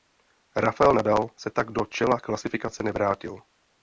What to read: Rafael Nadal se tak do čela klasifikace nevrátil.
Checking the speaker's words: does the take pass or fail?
pass